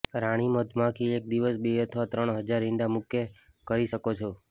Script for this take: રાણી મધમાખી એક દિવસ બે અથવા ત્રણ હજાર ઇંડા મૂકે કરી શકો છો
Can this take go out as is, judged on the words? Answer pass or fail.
pass